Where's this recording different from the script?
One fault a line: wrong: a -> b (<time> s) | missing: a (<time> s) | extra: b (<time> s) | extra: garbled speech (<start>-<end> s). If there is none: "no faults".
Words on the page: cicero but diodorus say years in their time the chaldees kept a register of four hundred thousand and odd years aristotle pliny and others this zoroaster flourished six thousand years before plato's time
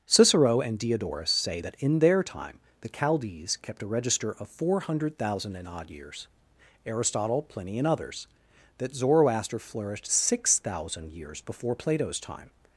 wrong: but -> and (0.6 s)
wrong: years -> that (1.6 s)
wrong: this -> that (8.8 s)